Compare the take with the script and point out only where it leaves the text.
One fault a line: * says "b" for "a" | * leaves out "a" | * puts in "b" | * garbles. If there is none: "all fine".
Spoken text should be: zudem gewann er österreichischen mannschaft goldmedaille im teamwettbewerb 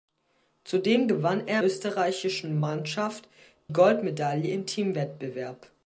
all fine